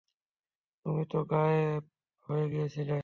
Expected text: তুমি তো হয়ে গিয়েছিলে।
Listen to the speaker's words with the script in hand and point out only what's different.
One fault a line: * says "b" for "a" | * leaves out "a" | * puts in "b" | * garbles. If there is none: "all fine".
* puts in "গায়েব"